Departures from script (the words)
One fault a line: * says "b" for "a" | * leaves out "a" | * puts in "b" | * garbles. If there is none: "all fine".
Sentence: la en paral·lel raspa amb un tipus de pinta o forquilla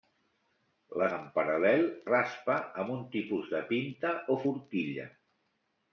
all fine